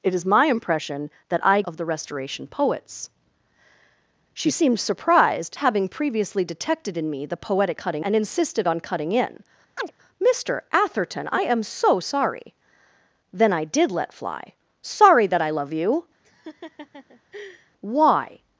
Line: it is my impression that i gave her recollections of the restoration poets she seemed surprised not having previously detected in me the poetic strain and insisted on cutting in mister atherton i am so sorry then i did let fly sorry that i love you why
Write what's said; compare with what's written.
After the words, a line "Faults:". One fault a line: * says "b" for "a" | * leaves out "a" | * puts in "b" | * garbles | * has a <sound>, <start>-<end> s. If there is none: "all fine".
it is my impression that i of the restoration poets she seemed surprised having previously detected in me the poetic cutting and insisted on cutting in mister atherton i am so sorry then i did let fly sorry that i love you why
Faults:
* leaves out "gave her recollections"
* leaves out "not"
* says "cutting" for "strain"
* has a chirp, 9.8-9.9 s
* has a laugh, 16.2-17.7 s